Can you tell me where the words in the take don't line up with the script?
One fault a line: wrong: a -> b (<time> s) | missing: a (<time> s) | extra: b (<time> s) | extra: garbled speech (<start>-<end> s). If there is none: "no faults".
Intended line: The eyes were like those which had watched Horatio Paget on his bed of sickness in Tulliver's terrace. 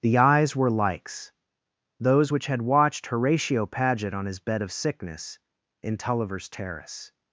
wrong: like -> likes (0.7 s)